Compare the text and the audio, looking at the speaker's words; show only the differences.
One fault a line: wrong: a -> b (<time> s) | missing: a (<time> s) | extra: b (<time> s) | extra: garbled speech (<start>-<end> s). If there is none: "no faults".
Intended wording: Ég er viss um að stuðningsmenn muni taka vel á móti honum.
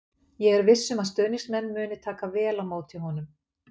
no faults